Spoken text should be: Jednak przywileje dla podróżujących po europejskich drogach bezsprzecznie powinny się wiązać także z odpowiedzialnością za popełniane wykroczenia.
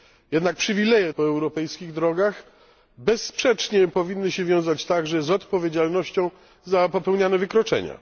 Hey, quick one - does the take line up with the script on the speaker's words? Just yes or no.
no